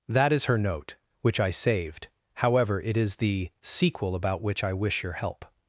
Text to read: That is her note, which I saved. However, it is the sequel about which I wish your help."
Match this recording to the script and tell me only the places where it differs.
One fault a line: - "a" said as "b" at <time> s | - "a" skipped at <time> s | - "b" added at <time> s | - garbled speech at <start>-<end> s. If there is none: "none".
none